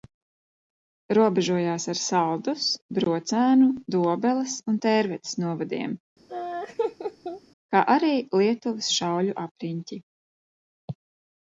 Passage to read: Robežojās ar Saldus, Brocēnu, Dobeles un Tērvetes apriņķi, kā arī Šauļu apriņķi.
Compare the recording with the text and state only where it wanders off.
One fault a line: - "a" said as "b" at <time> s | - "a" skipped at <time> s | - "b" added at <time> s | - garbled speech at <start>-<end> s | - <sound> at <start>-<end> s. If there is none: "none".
- "apriņķi" said as "novadiem" at 5.5 s
- laugh at 6.3-7.4 s
- "Lietuvas" added at 8.4 s